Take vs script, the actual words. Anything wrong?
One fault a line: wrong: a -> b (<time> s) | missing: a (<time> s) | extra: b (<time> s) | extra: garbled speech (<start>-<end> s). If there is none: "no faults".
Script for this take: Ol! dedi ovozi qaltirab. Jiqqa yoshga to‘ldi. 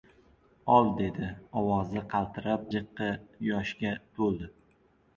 no faults